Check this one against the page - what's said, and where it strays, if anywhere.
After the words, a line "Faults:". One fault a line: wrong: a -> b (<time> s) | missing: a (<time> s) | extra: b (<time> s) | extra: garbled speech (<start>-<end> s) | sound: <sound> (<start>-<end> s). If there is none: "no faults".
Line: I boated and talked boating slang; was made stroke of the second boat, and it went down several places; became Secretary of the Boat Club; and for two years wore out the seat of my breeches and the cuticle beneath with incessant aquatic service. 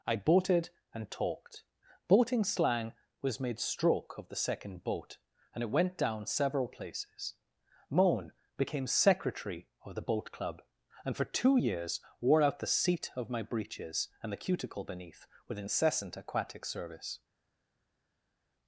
I boated and talked boating slang; was made stroke of the second boat, and it went down several places; moan became Secretary of the Boat Club; and for two years wore out the seat of my breeches and the cuticle beneath with incessant aquatic service.
Faults:
extra: moan (7.9 s)